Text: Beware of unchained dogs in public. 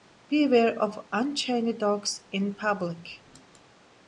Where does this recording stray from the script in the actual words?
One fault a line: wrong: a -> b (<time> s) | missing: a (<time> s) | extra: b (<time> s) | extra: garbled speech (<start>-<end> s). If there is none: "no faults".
no faults